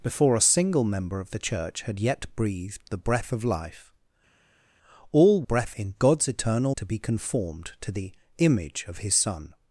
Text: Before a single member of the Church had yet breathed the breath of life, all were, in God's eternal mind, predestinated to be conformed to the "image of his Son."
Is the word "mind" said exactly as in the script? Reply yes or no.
no